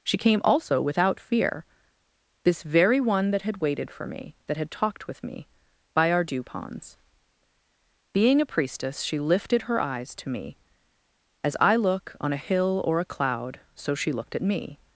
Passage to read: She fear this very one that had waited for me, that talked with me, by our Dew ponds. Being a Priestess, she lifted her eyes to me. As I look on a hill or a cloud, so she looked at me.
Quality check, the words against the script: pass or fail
fail